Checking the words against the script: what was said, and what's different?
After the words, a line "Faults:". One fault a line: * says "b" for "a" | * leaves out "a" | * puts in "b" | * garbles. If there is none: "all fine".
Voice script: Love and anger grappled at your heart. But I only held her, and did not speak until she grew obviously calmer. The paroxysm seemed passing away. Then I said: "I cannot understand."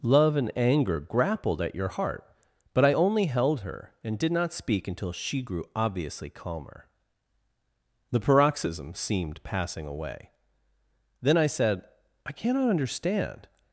Love and anger grappled at your heart. But I only held her, and did not speak until she grew obviously calmer. The paroxysm seemed passing away. Then I said: "I cannot understand."
Faults:
all fine